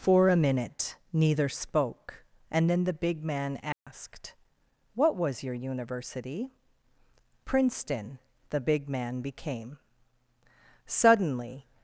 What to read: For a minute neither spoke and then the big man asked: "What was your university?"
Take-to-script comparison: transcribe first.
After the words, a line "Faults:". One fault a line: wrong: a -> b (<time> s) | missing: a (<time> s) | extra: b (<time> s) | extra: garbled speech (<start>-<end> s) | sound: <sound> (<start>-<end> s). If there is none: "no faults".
For a minute neither spoke and then the big man asked: "What was your university?" "Princeton." The big man became suddenly
Faults:
sound: dropout (3.7-3.9 s)
extra: Princeton The big man became suddenly (7.4 s)